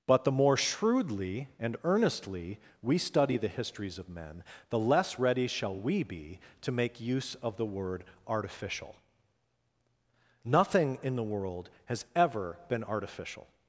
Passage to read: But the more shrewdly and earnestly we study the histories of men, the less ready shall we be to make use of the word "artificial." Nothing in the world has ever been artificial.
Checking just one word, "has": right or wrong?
right